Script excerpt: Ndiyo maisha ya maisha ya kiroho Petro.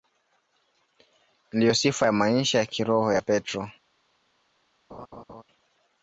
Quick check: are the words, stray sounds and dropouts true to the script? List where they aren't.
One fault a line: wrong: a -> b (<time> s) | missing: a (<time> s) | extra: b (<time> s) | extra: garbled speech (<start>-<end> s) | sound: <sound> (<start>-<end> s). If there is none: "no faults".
wrong: maisha -> sifa (1.7 s)
extra: ya (3.1 s)
sound: laugh (4.9-5.4 s)